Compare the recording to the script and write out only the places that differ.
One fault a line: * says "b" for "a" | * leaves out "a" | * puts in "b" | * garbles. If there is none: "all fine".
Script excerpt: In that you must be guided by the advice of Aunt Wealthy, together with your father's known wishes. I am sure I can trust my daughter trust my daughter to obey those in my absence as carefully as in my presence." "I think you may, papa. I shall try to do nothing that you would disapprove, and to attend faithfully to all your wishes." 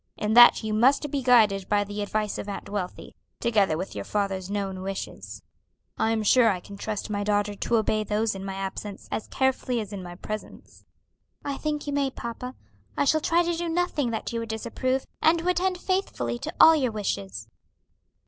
* leaves out "trust my daughter"